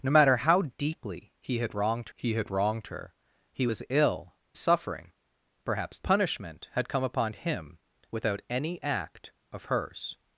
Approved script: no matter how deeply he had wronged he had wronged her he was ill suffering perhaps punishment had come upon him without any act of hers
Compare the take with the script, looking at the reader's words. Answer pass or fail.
pass